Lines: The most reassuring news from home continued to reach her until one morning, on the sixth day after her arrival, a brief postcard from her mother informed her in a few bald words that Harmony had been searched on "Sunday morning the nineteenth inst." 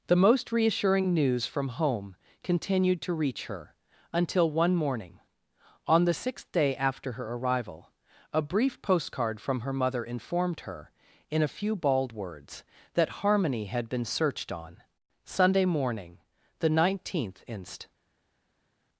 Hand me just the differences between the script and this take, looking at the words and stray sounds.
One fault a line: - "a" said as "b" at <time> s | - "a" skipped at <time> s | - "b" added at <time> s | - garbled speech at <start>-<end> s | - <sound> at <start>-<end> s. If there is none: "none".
none